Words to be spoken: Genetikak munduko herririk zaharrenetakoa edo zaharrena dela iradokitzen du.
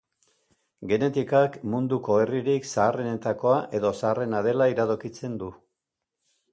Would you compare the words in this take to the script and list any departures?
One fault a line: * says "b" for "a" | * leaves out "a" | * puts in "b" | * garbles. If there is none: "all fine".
all fine